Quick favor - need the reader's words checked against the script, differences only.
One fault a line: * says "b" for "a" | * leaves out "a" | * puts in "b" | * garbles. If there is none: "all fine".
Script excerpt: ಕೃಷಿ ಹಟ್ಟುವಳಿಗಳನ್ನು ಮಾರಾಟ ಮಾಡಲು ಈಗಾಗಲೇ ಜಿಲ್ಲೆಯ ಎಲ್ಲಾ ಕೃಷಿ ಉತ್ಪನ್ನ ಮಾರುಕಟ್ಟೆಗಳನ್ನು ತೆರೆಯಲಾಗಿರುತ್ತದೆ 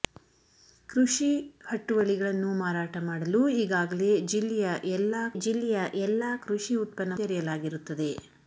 * puts in "ಜಿಲ್ಲೆಯ ಎಲ್ಲಾ"
* leaves out "ಮಾರುಕಟ್ಟೆಗಳನ್ನು"